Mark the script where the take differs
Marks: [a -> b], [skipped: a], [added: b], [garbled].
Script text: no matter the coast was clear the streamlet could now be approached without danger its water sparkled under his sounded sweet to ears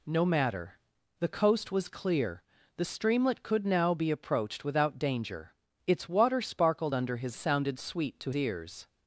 no matter the coast was clear the streamlet could now be approached without danger its water sparkled under his sounded sweet to ears